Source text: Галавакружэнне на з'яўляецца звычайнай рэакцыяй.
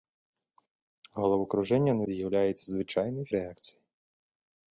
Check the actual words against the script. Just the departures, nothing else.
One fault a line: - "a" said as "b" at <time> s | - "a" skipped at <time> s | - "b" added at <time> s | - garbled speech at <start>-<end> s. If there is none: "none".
none